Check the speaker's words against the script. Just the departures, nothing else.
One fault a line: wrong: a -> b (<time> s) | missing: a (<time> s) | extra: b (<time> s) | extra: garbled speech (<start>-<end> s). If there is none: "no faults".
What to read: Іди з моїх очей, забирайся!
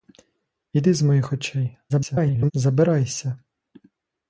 extra: garbled speech (1.9-2.5 s)